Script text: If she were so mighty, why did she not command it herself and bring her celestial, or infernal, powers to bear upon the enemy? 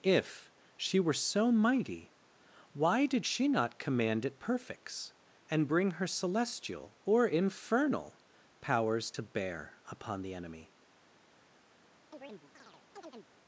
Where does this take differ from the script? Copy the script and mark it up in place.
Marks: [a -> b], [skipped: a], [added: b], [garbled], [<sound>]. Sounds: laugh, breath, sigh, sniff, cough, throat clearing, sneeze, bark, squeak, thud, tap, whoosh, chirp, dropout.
If she were so mighty, why did she not command it [herself -> perfects] and bring her celestial, or infernal, powers to bear upon the enemy? [chirp]